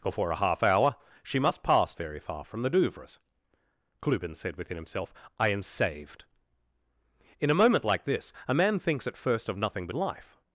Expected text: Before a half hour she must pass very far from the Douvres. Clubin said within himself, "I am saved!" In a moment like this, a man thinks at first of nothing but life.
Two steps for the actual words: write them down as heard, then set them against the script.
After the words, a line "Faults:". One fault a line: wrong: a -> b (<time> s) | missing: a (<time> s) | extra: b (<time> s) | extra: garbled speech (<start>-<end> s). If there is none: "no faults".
Before a half hour she must pass very far from the Douvres. Clubin said within himself, "I am saved!" In a moment like this, a man thinks at first of nothing but life.
Faults:
no faults